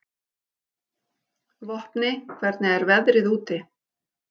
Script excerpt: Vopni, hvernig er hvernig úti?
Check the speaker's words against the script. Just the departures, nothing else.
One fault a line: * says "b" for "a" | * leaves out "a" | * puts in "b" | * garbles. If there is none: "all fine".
* says "veðrið" for "hvernig"